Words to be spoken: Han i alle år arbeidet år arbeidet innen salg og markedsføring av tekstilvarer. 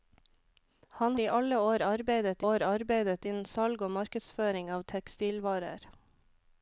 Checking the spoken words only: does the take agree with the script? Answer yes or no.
yes